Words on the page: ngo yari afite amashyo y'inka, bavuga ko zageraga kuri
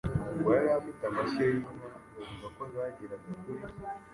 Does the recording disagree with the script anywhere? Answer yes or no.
no